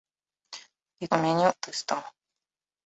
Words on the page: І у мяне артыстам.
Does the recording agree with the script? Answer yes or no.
yes